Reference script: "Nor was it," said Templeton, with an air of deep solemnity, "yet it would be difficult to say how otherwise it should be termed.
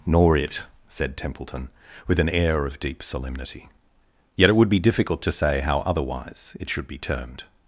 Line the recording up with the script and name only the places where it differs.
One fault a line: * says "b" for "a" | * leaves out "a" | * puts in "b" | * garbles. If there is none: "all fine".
* leaves out "was"